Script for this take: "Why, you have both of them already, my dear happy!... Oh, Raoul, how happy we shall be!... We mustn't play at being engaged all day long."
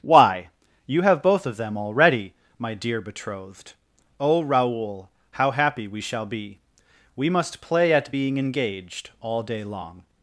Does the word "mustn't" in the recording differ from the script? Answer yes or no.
yes